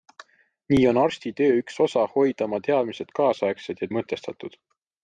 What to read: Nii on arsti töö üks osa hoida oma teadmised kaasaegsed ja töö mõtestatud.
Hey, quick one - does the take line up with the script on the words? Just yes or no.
no